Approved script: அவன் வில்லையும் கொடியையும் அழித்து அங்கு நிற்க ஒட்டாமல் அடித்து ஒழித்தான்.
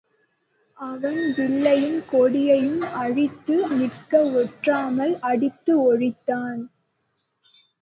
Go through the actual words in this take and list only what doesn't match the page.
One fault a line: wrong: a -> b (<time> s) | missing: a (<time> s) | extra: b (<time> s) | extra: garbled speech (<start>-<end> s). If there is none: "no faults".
missing: அங்கு (3.6 s)